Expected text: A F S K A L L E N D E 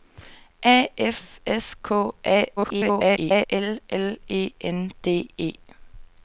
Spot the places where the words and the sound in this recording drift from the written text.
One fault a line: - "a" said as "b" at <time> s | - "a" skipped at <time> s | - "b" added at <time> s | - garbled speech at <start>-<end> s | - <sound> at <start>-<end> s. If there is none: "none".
- garbled speech at 2.6-3.5 s